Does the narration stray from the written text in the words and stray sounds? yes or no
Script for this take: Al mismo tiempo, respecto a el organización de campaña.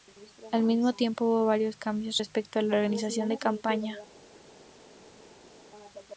yes